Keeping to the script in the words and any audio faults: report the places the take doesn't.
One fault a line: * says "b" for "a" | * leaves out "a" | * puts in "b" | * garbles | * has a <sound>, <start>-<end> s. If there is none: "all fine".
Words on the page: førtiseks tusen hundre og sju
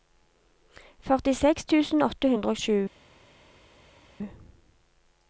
* puts in "åtte"